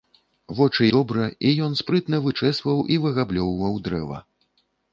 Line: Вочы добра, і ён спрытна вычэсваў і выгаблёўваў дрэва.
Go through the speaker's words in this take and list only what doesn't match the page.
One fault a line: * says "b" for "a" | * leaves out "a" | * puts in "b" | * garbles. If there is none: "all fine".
all fine